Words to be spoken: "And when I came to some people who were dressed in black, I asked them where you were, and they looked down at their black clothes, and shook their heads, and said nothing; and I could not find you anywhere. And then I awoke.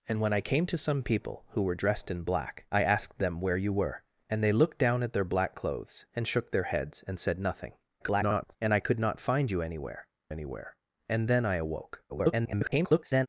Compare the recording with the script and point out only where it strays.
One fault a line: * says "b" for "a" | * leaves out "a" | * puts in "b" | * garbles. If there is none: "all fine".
* garbles
* puts in "anywhere"
* garbles